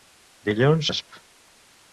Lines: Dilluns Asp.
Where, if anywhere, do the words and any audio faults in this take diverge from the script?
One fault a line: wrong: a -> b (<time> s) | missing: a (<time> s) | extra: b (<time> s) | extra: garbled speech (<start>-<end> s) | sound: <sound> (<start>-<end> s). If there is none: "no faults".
no faults